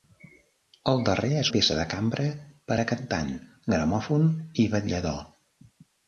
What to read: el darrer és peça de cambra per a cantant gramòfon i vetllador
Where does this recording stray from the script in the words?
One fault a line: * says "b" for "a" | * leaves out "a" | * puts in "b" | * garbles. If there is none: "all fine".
all fine